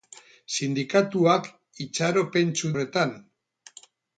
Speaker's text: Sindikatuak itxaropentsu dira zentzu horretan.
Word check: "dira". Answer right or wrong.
wrong